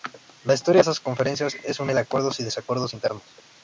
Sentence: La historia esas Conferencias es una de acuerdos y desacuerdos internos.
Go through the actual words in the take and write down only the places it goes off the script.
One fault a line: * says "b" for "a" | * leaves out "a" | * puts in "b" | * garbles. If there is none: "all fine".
all fine